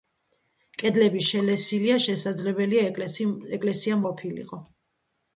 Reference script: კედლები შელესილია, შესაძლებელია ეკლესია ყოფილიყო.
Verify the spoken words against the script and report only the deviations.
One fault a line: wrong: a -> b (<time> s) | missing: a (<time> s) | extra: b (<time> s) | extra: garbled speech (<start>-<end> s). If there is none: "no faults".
no faults